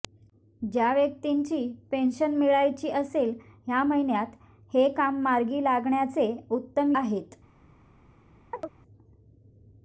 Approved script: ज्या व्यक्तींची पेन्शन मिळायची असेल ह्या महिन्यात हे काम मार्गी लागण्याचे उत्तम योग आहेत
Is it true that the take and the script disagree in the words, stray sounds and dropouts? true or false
true